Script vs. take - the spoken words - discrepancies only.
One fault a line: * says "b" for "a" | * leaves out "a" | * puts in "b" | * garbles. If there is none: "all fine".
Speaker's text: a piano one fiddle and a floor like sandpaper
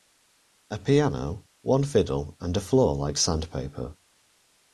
all fine